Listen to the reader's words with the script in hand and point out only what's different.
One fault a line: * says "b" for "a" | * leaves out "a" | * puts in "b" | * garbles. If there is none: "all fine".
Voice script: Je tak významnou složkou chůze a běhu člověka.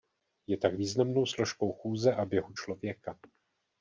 all fine